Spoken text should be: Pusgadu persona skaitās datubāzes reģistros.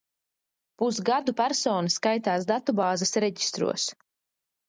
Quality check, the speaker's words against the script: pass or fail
pass